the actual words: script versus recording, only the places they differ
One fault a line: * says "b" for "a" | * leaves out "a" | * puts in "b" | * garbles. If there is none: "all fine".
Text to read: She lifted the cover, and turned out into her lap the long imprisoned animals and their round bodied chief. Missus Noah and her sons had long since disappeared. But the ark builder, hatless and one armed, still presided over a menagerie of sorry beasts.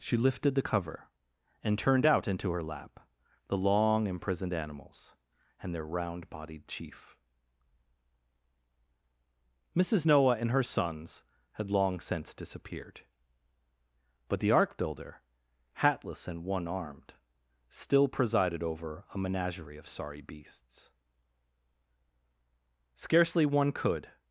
* puts in "Scarcely one could"